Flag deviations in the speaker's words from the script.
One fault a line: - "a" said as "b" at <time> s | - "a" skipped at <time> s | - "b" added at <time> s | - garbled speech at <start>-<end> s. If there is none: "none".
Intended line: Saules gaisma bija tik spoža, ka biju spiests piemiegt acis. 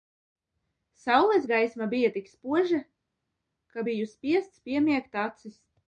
none